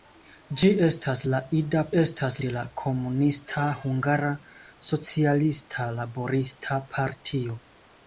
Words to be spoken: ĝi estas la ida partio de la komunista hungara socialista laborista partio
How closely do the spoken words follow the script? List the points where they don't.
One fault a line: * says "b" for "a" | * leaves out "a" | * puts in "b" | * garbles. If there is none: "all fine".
* says "estas" for "partio"